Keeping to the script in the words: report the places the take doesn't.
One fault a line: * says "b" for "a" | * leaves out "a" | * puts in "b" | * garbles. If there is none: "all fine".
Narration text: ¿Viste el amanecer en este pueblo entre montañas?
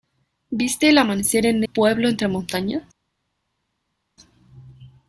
* leaves out "este"